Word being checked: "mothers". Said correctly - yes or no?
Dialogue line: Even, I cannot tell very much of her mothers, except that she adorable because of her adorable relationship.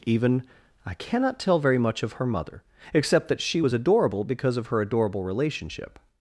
no